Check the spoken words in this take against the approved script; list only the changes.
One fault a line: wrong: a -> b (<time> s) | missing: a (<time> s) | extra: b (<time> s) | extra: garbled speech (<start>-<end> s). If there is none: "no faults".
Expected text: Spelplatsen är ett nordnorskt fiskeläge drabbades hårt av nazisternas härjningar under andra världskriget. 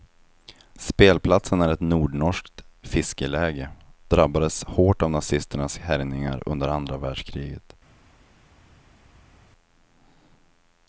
no faults